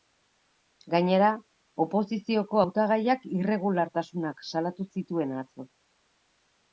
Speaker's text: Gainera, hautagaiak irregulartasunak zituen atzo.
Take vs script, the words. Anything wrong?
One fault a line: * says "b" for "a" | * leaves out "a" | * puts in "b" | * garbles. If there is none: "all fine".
* puts in "oposizioko"
* puts in "salatu"